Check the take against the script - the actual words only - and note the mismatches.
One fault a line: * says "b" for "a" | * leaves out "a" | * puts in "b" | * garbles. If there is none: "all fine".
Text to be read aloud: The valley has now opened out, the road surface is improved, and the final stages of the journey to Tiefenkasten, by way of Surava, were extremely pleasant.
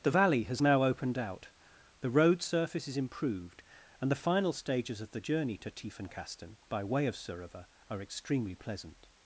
* says "are" for "were"